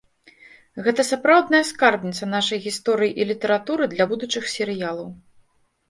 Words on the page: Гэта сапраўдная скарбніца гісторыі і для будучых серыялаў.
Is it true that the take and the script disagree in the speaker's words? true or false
true